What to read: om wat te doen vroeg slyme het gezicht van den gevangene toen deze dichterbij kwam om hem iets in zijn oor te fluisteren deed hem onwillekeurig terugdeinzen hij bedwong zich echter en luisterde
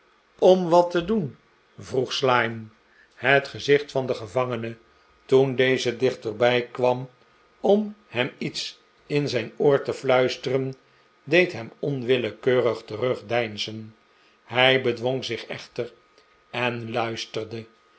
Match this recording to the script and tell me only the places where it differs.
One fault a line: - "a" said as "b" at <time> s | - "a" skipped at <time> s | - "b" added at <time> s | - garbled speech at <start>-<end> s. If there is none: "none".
none